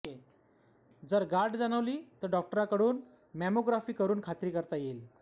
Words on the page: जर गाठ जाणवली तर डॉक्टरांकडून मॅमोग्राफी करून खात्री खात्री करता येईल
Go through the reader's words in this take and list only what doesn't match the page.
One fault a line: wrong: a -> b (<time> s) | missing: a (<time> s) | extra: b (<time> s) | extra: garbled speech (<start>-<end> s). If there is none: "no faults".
missing: खात्री (4.5 s)